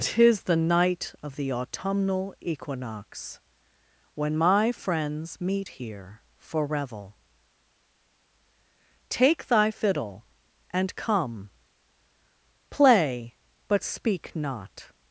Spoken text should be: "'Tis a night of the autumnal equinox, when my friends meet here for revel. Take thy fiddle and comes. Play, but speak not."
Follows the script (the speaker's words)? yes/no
no